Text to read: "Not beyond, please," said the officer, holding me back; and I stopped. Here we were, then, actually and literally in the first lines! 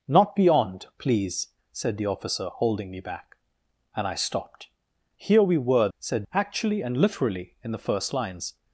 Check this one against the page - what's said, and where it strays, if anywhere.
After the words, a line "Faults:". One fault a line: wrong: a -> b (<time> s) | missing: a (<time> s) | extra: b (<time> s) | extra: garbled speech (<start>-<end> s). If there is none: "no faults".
"Not beyond, please," said the officer, holding me back; and I stopped. Here we were, said, actually and literally in the first lines!
Faults:
wrong: then -> said (6.0 s)